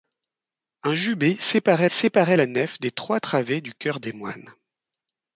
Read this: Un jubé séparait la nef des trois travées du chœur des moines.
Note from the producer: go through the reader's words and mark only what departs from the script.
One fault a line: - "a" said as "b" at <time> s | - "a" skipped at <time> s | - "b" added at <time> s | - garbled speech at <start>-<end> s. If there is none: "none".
- "séparait" added at 1.8 s